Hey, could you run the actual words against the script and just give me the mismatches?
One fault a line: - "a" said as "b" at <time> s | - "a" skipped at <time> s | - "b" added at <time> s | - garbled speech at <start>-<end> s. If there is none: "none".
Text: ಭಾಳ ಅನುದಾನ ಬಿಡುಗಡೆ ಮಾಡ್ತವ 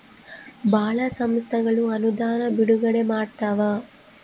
- "ಸಂಸ್ಥೆಗಳು" added at 1.2 s